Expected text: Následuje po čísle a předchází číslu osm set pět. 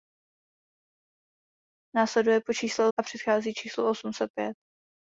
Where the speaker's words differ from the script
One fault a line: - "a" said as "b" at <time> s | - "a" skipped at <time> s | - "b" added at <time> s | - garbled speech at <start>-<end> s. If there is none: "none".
none